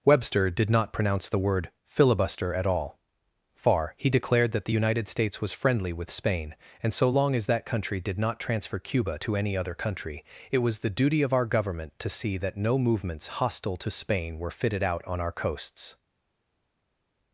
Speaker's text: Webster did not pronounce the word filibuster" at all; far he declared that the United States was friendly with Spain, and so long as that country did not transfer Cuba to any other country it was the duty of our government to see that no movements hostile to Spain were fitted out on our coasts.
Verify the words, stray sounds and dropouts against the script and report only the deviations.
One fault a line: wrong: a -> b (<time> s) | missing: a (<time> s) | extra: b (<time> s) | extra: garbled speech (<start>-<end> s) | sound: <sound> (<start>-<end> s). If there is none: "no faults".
no faults